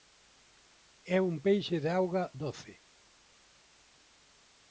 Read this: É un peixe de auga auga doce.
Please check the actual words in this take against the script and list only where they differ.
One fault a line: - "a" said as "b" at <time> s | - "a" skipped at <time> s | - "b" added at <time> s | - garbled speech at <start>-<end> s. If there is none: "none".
- "auga" skipped at 2.2 s